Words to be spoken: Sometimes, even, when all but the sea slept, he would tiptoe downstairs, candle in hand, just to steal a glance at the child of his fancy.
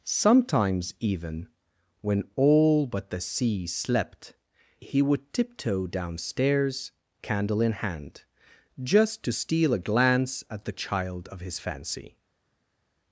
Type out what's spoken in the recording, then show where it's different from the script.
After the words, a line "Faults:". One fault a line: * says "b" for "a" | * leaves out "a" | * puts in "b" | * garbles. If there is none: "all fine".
Sometimes, even, when all but the sea slept, he would tiptoe downstairs, candle in hand, just to steal a glance at the child of his fancy.
Faults:
all fine